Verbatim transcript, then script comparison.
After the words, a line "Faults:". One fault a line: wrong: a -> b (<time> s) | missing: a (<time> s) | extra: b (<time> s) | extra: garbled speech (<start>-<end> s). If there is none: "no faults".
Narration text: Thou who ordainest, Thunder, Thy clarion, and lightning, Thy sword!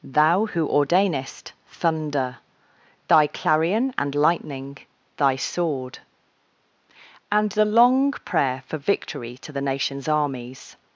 Thou who ordainest, Thunder, Thy clarion, and lightning, Thy sword! and the "long prayer" for victory to the nation's armies
Faults:
extra: and the long prayer for victory to the nation's armies (7.3 s)